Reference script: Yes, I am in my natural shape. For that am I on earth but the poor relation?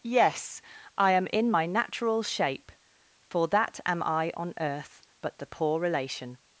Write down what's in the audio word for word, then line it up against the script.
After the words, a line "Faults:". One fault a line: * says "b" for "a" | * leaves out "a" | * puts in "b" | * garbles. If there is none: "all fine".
Yes, I am in my natural shape. For that am I on earth but the poor relation?
Faults:
all fine